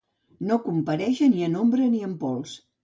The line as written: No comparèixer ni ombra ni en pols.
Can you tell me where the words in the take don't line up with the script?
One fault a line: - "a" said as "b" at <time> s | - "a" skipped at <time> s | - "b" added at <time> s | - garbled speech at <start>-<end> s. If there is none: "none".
- "en" added at 1.5 s